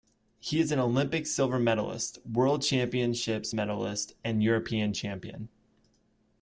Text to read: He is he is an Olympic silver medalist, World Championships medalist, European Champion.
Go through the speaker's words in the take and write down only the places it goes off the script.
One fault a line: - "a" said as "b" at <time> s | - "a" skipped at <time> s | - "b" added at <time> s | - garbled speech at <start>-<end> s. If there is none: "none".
- "he is" skipped at 0.7 s
- "and" added at 4.2 s